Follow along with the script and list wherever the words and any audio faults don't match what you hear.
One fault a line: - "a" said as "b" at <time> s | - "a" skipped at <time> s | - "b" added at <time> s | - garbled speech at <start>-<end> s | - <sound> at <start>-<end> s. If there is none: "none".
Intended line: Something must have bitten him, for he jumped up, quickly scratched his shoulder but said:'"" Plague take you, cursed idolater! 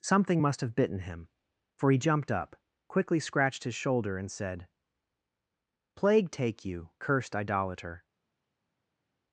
- "but" said as "and" at 4.2 s